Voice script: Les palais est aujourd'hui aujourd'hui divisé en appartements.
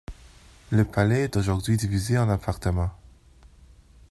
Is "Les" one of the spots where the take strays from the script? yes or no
yes